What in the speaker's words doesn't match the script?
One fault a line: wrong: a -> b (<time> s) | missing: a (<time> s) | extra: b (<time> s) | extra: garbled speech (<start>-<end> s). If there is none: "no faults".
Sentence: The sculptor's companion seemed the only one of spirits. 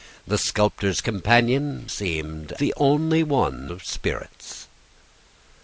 no faults